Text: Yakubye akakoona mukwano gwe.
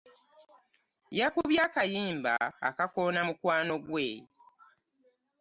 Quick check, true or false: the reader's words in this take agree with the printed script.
false